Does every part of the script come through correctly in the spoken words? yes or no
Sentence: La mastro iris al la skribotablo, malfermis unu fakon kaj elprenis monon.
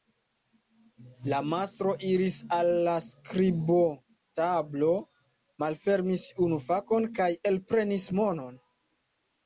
yes